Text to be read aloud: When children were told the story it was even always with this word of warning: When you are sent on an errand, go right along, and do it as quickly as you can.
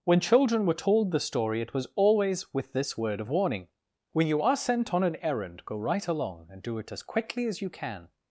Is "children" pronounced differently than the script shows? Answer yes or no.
no